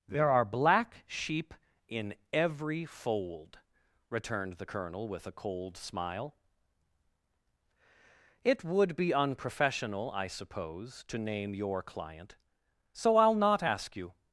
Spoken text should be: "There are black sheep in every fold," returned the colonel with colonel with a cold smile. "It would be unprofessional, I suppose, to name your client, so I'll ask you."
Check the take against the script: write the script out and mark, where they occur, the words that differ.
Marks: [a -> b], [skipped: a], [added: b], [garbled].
"There are black sheep in every fold," returned the colonel with [skipped: colonel with] a cold smile. "It would be unprofessional, I suppose, to name your client, so I'll [added: not] ask you."